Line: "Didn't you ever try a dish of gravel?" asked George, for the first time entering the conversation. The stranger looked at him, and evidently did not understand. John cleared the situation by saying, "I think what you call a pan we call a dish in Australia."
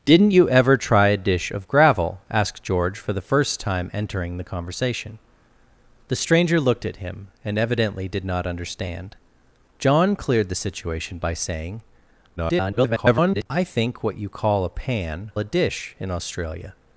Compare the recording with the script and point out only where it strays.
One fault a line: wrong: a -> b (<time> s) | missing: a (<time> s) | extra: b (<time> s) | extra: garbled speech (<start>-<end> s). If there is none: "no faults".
extra: garbled speech (12.4-13.5 s)
missing: we call (15.3 s)